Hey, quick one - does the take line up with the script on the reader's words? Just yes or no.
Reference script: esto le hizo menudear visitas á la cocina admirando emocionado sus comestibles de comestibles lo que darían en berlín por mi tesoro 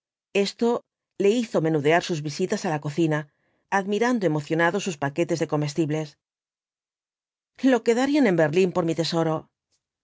no